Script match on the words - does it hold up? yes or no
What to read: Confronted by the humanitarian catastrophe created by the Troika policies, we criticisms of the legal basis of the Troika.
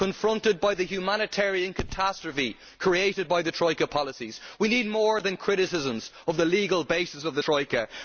no